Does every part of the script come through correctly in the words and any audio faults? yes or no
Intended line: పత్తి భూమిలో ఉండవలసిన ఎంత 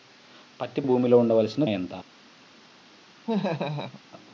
no